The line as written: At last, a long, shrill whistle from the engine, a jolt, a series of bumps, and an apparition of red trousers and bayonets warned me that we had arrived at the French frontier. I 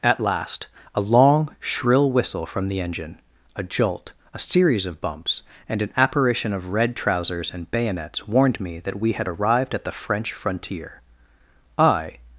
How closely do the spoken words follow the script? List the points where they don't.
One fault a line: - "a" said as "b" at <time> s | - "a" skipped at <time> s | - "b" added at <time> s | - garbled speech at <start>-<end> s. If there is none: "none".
none